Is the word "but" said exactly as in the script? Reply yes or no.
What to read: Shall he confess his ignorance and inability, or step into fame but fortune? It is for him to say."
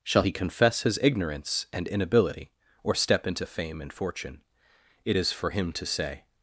no